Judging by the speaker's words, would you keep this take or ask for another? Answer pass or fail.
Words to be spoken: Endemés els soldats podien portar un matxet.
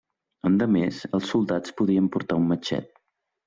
pass